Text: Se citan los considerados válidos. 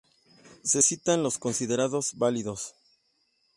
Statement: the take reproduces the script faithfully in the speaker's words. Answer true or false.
true